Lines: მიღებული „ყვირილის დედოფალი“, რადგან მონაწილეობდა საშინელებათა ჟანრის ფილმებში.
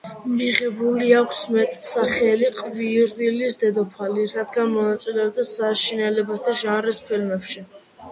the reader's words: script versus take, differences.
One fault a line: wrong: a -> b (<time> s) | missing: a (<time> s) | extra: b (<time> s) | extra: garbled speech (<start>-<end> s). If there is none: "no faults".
extra: აქვს მეტსახელი (1.2 s)